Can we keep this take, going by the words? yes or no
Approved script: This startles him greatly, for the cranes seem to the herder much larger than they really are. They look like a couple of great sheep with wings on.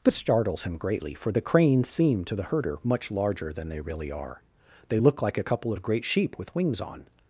yes